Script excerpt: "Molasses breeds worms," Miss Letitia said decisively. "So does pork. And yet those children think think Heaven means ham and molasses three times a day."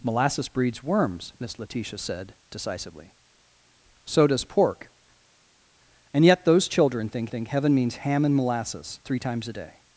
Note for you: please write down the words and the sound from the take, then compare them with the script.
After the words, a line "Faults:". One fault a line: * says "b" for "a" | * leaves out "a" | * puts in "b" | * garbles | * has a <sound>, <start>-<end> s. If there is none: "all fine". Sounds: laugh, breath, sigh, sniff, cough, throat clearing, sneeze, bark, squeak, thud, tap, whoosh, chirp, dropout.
"Molasses breeds worms," Miss Letitia said decisively. "So does pork. And yet those children think think Heaven means ham and molasses three times a day."
Faults:
all fine